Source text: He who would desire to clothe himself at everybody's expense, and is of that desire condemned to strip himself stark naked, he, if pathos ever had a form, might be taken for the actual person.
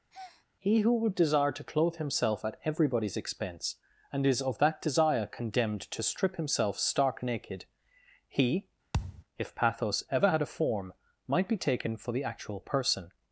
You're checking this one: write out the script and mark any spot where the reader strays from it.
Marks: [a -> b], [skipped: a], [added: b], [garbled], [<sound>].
[breath] He who would desire to clothe himself at everybody's expense, and is of that desire condemned to strip himself stark naked, he, [thud] if pathos ever had a form, might be taken for the actual person.